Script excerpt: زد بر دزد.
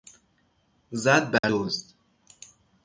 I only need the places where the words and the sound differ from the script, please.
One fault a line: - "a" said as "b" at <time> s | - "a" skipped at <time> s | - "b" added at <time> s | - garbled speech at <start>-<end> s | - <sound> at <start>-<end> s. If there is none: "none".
- dropout at 1.4-1.4 s